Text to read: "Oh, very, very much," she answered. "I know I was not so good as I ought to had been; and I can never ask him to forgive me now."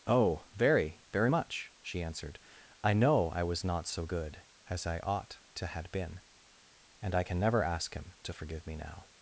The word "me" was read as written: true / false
true